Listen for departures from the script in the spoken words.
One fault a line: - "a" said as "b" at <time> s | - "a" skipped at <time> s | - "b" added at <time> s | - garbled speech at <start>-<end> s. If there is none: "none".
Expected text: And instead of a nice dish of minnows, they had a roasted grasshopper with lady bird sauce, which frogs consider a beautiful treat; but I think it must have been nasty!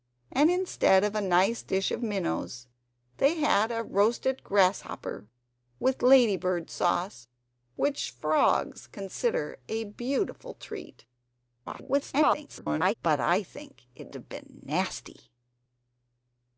- garbled speech at 11.7-12.9 s
- "must" skipped at 14.1 s